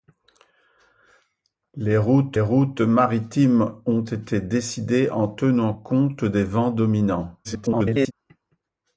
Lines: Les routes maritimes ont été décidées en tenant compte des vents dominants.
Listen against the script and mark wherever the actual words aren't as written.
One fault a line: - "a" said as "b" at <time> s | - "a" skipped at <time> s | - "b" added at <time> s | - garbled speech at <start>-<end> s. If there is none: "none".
- "routes" added at 2.4 s
- garbled speech at 7.4-8.1 s